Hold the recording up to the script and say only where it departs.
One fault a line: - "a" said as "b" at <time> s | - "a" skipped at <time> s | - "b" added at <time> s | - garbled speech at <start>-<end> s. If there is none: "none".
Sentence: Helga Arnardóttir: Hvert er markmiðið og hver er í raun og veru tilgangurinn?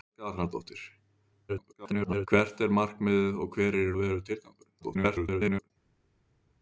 - garbled speech at 1.5-2.3 s
- "raun" skipped at 3.9 s
- garbled speech at 4.8-5.7 s